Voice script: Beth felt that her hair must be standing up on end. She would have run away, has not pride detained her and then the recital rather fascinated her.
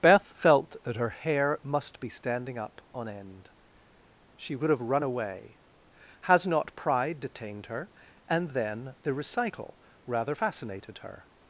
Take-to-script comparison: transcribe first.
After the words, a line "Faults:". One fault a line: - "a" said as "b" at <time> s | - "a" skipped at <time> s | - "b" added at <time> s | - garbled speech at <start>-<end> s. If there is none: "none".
Beth felt that her hair must be standing up on end. She would have run away, has not pride detained her and then the recital rather fascinated her.
Faults:
none